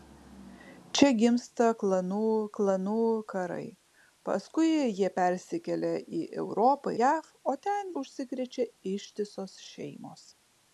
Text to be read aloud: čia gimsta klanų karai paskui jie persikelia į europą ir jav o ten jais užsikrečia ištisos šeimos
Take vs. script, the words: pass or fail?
fail